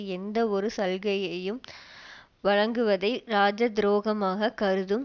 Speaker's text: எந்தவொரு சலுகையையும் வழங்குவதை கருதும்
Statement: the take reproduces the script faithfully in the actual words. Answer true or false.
false